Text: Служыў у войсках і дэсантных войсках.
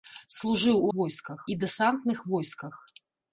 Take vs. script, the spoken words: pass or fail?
pass